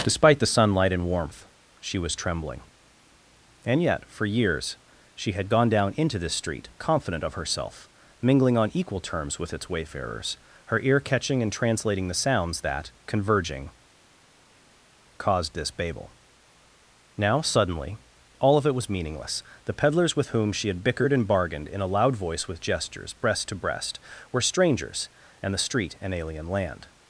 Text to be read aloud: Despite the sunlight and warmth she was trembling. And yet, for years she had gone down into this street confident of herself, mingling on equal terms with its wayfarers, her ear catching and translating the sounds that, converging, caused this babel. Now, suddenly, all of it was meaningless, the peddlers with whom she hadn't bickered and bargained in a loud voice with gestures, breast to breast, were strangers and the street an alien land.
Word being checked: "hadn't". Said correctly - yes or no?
no